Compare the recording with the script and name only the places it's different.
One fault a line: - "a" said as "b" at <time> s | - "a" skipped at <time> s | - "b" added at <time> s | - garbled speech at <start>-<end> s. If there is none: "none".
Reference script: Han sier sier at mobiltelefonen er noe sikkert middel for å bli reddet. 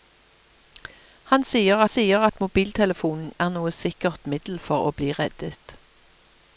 none